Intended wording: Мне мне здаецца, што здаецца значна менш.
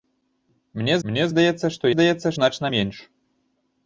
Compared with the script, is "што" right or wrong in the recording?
right